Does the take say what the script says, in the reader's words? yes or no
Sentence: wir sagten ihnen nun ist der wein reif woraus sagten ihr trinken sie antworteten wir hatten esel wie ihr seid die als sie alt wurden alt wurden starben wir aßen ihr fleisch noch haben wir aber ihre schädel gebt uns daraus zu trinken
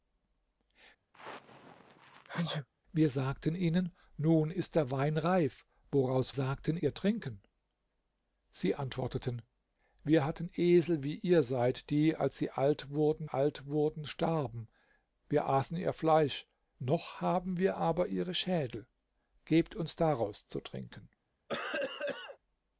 yes